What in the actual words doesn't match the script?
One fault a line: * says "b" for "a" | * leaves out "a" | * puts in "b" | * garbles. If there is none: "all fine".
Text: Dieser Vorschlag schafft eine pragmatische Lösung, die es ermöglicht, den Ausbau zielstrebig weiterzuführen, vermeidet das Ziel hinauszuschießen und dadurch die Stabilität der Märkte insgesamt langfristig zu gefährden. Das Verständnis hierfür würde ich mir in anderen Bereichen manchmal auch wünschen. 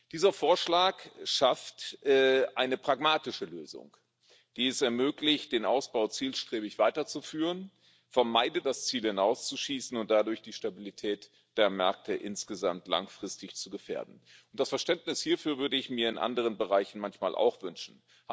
all fine